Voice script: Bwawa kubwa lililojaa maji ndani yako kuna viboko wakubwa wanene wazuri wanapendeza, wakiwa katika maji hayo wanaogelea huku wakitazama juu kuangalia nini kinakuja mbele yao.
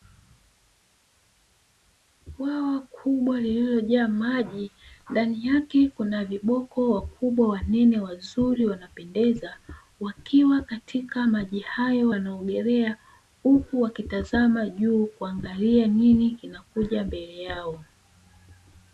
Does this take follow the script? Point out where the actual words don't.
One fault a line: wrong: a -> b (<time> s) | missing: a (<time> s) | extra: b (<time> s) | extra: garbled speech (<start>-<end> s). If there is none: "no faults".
wrong: yako -> yake (5.5 s)